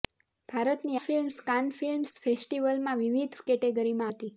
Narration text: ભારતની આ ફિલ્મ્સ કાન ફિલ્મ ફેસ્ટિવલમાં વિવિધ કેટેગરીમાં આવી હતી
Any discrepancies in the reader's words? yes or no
yes